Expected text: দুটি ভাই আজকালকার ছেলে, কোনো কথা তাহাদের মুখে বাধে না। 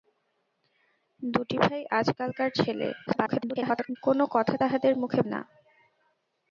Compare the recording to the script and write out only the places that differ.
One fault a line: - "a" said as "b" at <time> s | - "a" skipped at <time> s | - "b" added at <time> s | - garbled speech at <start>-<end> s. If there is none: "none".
- garbled speech at 3.1-4.0 s
- "বাধে" skipped at 5.2 s